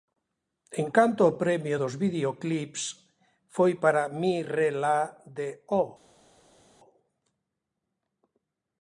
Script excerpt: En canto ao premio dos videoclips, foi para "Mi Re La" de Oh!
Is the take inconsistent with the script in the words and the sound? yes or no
no